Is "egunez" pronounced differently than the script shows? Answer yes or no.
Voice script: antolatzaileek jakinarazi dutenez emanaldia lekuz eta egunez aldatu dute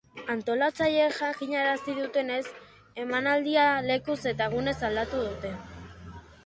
no